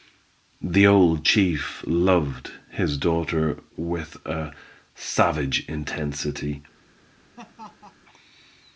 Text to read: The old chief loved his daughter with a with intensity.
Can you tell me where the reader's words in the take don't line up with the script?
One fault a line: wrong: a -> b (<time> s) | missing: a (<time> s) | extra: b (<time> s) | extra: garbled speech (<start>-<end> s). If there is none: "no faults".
wrong: with -> savage (5.0 s)